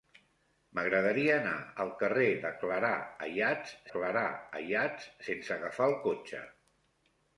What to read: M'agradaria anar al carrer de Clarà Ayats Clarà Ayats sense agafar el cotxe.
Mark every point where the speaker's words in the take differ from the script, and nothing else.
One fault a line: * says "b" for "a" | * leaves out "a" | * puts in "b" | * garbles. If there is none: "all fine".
all fine